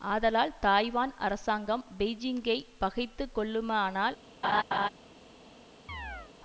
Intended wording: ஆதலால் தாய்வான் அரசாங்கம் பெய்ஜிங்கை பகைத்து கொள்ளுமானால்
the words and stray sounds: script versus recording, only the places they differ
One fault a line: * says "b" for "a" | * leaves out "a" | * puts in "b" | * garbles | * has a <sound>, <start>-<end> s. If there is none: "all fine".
* has a laugh, 4.4-4.9 s
* has a chirp, 5.9-6.3 s